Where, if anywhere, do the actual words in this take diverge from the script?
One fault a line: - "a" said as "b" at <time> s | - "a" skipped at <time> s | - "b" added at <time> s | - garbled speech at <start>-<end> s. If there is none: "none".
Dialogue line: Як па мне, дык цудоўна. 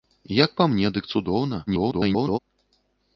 - garbled speech at 1.7-2.4 s